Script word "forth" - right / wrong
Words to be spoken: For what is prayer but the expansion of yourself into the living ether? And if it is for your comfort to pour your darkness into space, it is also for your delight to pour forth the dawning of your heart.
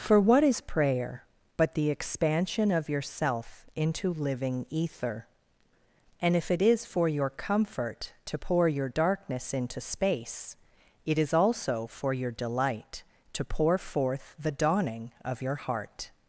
right